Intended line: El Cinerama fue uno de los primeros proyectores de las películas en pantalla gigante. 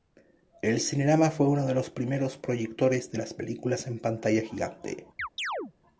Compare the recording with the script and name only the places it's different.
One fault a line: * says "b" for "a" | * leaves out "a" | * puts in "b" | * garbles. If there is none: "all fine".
all fine